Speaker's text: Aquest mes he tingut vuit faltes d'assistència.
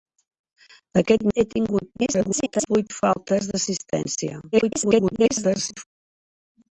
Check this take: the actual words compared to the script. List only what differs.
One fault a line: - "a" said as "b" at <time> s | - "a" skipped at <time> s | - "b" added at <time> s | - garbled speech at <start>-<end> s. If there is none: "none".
- "mes" skipped at 1.2 s
- garbled speech at 2.0-2.7 s
- garbled speech at 4.5-5.8 s